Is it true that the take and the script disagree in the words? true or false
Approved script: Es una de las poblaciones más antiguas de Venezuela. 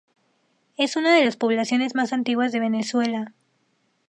false